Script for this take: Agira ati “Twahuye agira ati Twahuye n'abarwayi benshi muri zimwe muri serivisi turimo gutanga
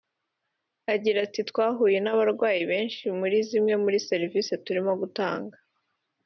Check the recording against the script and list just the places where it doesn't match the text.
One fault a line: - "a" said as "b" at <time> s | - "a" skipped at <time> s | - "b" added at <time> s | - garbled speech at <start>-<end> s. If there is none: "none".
- "agira ati Twahuye" skipped at 2.0 s